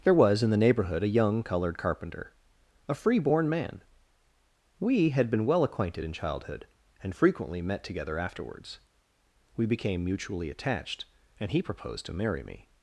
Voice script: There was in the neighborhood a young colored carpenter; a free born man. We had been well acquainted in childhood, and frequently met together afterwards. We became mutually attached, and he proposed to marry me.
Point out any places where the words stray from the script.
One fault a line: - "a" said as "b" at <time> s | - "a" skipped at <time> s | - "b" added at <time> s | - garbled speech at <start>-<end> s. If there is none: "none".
none